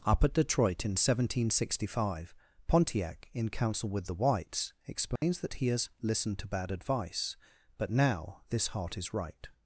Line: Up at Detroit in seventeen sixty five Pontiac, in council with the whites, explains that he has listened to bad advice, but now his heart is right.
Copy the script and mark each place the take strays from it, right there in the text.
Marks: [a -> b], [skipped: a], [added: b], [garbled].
Up at Detroit in seventeen sixty five Pontiac, in council with the whites, explains that he has listened to bad advice, but now [his -> this] heart is right.